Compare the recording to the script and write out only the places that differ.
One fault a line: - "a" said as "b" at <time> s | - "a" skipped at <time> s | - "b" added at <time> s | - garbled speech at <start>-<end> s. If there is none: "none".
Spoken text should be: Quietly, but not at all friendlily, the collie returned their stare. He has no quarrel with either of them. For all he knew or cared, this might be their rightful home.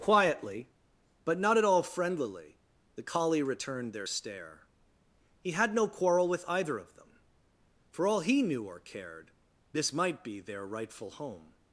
- "has" said as "had" at 5.5 s